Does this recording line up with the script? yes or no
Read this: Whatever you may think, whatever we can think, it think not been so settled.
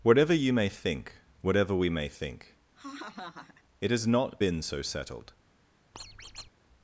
no